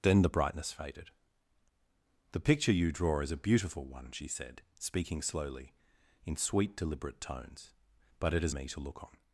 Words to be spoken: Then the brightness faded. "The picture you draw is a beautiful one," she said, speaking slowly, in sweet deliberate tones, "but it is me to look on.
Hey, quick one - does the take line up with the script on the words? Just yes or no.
yes